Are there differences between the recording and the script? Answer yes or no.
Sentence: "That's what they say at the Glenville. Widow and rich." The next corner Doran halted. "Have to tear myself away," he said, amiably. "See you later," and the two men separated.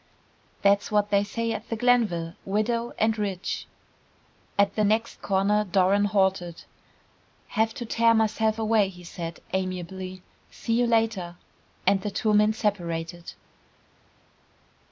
yes